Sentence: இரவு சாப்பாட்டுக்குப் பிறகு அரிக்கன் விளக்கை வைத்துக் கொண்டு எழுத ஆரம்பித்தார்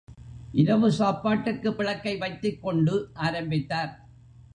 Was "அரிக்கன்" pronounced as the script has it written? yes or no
no